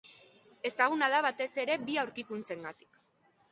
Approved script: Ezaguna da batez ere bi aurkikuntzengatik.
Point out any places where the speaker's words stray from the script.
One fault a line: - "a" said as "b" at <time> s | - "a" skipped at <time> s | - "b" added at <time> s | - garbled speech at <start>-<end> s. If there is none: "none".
none